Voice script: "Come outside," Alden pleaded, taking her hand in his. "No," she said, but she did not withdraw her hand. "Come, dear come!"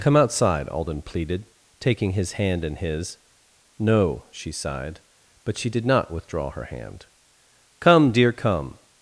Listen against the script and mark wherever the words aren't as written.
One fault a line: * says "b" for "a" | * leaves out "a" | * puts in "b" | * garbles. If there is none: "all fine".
* says "his" for "her"
* says "sighed" for "said"